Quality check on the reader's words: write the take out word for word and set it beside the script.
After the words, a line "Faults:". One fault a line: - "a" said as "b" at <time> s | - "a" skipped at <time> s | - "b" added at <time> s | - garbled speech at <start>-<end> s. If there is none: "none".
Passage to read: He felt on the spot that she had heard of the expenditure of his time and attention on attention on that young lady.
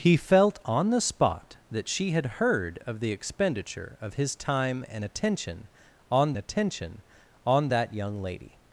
He felt on the spot that she had heard of the expenditure of his time and attention on attention on that young lady.
Faults:
none